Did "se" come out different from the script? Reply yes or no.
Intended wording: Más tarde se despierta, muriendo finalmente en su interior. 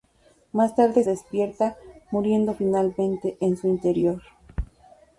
yes